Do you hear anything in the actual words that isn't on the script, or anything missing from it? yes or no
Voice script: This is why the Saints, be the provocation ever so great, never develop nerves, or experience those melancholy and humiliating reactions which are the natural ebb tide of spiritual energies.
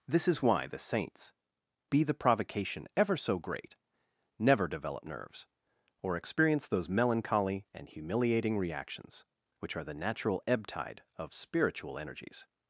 no